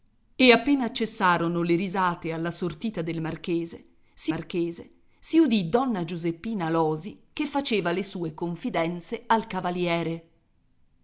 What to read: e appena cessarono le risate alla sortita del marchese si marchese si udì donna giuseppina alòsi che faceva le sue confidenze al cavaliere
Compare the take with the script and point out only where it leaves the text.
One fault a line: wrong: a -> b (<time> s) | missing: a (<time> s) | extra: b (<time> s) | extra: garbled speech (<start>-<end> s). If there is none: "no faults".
no faults